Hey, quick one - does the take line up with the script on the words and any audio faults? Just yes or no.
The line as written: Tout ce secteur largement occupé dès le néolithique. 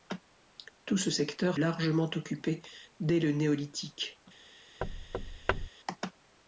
no